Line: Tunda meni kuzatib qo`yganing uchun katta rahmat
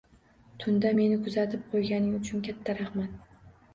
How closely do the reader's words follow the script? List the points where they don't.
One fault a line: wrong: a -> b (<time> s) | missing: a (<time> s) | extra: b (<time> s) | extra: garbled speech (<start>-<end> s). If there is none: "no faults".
no faults